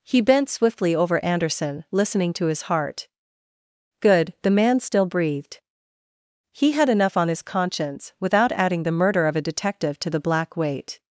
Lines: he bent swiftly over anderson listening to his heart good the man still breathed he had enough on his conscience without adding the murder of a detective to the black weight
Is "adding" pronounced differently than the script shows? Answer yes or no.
no